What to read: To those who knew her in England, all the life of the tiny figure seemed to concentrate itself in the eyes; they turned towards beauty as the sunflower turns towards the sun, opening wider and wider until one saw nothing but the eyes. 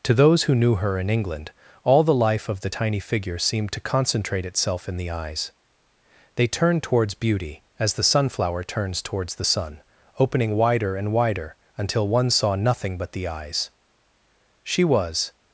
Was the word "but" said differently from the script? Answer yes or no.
no